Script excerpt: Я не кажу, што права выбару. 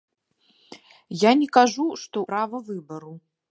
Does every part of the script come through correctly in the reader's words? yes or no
yes